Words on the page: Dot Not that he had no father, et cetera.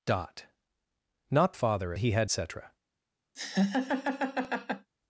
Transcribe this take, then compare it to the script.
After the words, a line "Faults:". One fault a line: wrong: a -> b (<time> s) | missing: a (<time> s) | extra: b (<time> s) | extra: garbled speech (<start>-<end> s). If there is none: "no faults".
Dot Not father he had cetera.
Faults:
wrong: that -> father (1.5 s)
missing: no father et (2.3 s)